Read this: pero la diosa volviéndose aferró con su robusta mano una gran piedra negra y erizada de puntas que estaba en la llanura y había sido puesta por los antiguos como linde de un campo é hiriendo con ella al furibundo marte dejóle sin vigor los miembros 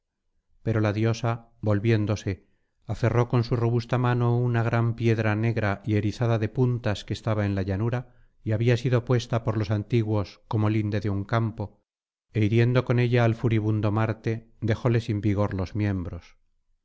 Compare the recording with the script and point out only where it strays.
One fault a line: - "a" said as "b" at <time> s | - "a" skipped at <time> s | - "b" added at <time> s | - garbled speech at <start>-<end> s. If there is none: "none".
none